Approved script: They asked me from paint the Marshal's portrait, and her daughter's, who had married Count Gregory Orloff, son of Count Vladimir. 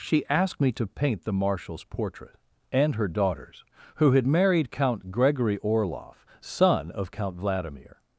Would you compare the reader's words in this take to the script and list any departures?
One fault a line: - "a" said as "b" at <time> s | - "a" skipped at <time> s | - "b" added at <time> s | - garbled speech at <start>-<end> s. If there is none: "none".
- "They" said as "She" at 0.0 s
- "from" said as "to" at 0.7 s